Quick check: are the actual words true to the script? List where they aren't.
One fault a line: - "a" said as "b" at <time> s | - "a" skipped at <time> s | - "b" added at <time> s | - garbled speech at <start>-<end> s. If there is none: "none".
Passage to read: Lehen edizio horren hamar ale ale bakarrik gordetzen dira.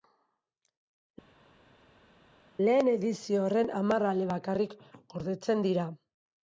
- "ale" skipped at 4.3 s